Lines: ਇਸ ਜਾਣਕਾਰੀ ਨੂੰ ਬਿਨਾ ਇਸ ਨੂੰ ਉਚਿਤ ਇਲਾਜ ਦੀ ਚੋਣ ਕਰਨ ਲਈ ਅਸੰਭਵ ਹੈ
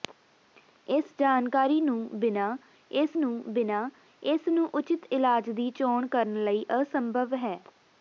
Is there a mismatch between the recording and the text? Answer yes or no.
yes